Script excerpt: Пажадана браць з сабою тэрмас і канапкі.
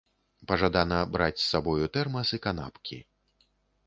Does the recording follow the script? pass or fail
pass